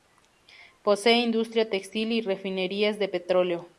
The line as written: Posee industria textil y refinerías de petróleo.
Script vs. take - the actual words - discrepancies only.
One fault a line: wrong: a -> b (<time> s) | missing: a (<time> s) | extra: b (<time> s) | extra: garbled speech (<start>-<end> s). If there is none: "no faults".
no faults